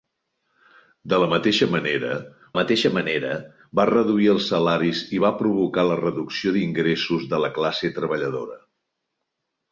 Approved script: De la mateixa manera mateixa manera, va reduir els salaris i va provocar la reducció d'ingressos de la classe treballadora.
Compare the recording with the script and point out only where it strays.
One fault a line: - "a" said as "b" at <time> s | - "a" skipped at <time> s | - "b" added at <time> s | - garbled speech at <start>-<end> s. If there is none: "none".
none